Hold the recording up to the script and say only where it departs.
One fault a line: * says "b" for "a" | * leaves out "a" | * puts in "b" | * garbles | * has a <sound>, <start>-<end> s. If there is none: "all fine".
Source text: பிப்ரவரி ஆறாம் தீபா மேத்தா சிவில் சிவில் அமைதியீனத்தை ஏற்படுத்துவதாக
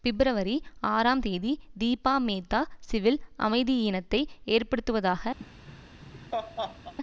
* puts in "தேதி"
* leaves out "சிவில்"
* has a laugh, 5.4-6.9 s